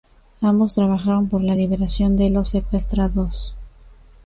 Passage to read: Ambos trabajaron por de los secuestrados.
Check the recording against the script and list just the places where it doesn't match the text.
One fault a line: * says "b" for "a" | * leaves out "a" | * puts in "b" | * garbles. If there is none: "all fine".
* puts in "la liberación"